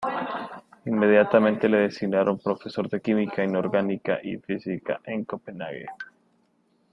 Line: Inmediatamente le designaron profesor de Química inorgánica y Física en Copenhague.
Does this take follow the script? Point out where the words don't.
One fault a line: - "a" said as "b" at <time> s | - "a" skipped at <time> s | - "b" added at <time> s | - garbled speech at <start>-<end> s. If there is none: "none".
none